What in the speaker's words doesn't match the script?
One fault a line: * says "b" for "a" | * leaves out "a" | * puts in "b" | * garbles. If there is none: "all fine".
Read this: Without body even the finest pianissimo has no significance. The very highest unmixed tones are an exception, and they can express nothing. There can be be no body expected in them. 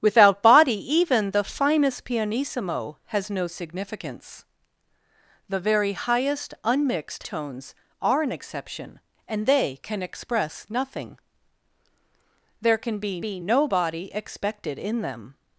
all fine